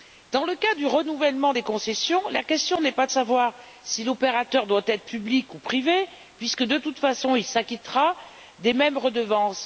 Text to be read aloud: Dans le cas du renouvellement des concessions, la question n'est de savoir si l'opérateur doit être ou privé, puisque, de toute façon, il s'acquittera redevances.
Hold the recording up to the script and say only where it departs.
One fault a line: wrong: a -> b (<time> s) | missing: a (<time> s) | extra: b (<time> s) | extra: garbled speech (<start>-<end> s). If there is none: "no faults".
extra: pas (2.9 s)
extra: public (5.0 s)
extra: des mêmes (8.6 s)